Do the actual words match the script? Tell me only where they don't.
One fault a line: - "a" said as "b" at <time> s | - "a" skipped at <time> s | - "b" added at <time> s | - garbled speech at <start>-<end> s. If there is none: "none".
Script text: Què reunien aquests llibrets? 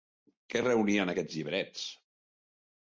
none